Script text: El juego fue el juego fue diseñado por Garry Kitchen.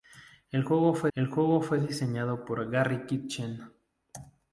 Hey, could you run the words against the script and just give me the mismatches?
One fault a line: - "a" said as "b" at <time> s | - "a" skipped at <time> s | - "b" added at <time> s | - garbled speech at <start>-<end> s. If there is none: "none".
none